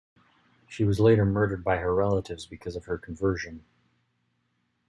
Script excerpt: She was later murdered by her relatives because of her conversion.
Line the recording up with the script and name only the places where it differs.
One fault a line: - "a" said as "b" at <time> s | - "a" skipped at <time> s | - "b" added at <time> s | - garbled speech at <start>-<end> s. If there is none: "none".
none